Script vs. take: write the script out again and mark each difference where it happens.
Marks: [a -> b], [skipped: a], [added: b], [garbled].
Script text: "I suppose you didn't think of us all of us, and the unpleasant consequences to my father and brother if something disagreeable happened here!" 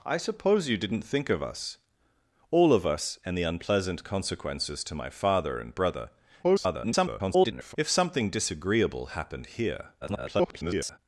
"I suppose you didn't think of us all of us, and the unpleasant consequences to my father and brother [garbled] if something disagreeable happened here!" [garbled]